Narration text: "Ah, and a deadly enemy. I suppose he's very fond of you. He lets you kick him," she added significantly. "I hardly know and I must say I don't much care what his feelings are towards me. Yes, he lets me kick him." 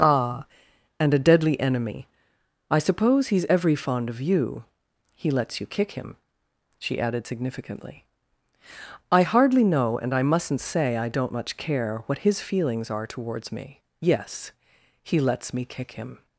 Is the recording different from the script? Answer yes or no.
yes